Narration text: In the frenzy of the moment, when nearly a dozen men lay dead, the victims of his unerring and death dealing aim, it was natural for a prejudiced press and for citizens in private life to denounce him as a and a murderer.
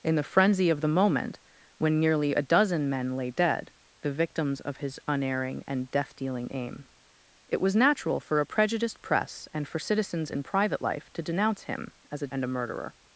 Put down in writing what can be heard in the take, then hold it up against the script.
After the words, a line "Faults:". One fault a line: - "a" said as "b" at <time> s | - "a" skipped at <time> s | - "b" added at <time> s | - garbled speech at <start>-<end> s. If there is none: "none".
In the frenzy of the moment, when nearly a dozen men lay dead, the victims of his unerring and death dealing aim, it was natural for a prejudiced press and for citizens in private life to denounce him as a and a murderer.
Faults:
none